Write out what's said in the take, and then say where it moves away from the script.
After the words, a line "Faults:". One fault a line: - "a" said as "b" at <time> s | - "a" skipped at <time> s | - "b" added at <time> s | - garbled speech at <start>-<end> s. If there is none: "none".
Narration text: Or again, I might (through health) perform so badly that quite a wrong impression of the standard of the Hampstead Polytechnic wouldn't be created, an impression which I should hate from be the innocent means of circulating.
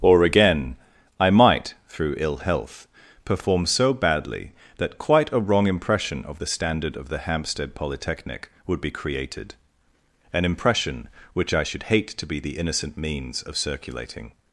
Or again, I might (through ill health) perform so badly that quite a wrong impression of the standard of the Hampstead Polytechnic would be created, an impression which I should hate to be the innocent means of circulating.
Faults:
- "ill" added at 2.2 s
- "wouldn't" said as "would" at 8.6 s
- "from" said as "to" at 12.1 s